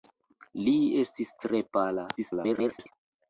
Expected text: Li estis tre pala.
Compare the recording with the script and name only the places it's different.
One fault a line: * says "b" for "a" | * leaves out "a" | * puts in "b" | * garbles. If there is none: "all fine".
* garbles